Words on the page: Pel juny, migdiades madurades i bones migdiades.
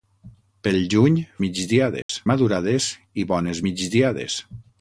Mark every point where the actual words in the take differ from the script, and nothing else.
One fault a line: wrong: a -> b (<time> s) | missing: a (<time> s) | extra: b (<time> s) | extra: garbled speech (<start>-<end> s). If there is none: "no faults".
no faults